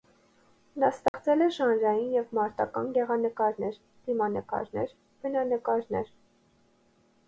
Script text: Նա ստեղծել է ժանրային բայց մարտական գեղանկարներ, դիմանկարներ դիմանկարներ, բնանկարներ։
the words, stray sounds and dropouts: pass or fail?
fail